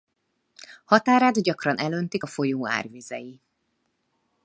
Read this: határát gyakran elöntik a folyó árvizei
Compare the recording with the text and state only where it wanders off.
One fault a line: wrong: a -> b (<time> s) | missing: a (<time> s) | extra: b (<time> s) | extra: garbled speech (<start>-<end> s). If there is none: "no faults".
no faults